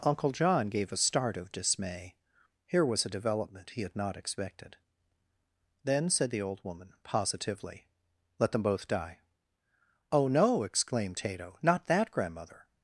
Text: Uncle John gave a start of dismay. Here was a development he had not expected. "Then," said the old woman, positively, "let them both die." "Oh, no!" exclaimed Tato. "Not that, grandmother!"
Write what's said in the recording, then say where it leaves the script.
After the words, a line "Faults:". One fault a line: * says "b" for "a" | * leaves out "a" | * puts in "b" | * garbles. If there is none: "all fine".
Uncle John gave a start of dismay. Here was a development he had not expected. "Then," said the old woman, positively, "let them both die." "Oh, no!" exclaimed Tato. "Not that, grandmother!"
Faults:
all fine